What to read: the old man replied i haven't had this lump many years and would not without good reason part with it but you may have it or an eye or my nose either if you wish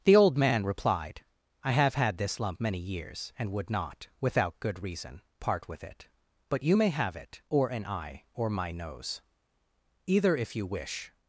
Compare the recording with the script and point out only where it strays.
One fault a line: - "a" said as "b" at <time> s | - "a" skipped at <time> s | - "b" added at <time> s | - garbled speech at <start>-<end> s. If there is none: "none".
- "haven't" said as "have" at 1.7 s